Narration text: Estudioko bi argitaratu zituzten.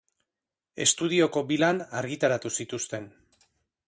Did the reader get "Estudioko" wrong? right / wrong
right